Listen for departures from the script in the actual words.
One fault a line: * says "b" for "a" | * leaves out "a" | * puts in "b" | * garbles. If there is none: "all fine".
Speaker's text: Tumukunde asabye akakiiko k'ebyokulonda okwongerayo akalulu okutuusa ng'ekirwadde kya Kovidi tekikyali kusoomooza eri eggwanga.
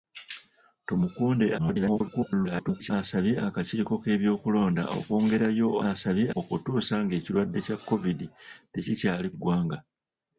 * garbles
* says "asabye" for "akalulu"
* leaves out "kusoomooza eri"